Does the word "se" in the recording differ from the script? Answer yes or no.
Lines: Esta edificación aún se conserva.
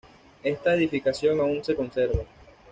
no